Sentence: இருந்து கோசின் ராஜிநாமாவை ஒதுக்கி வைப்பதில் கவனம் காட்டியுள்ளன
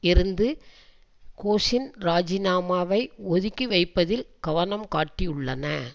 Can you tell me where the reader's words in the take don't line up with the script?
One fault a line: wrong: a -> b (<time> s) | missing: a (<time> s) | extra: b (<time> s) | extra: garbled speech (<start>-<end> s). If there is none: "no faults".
no faults